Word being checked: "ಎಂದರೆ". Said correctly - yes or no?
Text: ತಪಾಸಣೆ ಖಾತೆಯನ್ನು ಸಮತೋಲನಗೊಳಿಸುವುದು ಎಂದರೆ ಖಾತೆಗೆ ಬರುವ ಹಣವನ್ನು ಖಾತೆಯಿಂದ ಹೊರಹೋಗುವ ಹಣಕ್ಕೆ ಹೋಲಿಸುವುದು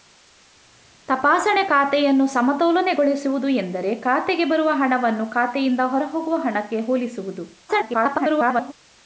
yes